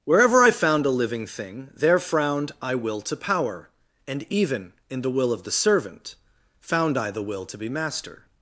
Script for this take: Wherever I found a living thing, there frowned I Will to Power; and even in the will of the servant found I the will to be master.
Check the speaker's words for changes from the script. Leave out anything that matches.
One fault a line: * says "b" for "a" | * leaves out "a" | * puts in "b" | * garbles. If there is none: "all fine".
all fine